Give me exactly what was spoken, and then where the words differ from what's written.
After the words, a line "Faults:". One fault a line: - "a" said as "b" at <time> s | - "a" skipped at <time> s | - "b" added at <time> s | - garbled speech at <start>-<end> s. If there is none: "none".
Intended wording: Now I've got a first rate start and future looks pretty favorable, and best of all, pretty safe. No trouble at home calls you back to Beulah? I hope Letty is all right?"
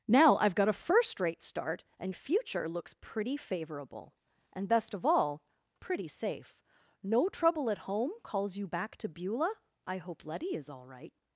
Now I've got a first rate start and future looks pretty favorable, and best of all, pretty safe. No trouble at home calls you back to Beulah? I hope Letty is all right?"
Faults:
none